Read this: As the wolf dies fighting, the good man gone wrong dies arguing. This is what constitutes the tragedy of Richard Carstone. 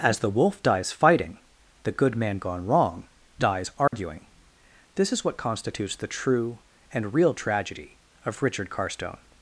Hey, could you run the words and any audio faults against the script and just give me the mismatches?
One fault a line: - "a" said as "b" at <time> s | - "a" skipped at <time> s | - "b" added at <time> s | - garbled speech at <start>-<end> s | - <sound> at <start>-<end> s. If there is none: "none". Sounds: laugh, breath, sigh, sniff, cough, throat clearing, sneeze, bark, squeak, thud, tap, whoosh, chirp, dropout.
- dropout at 3.9-3.9 s
- "true and real" added at 6.1 s